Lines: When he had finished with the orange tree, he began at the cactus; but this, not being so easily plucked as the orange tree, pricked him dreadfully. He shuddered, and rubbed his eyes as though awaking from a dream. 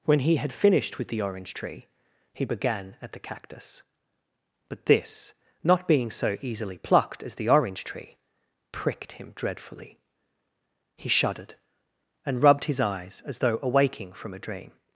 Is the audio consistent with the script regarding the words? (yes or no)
yes